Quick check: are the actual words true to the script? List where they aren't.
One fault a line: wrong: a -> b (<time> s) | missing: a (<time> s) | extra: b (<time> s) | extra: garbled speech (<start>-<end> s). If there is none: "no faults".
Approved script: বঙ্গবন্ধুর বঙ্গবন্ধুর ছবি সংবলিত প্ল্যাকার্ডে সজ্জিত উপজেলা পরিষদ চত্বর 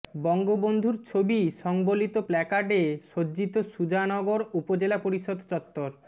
missing: বঙ্গবন্ধুর (0.9 s)
extra: সুজানগর (3.7 s)